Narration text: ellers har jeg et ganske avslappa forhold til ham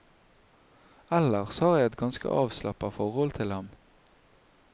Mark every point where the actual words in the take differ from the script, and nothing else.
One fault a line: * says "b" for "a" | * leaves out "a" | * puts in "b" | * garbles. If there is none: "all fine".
all fine